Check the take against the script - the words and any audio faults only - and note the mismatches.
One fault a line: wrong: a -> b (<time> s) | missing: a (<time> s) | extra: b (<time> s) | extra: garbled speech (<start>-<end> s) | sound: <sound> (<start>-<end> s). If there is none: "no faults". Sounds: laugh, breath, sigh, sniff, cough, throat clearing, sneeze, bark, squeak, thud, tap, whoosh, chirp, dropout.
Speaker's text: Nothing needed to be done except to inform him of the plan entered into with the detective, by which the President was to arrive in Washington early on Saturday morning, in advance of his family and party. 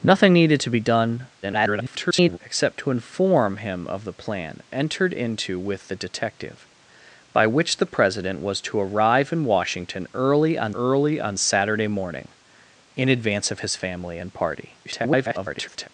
extra: garbled speech (1.4-2.4 s)
extra: early on (10.7 s)
extra: garbled speech (14.8-15.9 s)